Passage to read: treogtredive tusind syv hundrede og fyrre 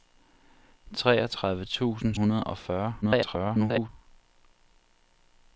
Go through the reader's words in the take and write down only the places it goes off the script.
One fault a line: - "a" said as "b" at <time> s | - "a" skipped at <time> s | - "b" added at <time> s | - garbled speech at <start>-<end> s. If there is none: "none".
- "syv" skipped at 2.1 s
- garbled speech at 3.0-3.9 s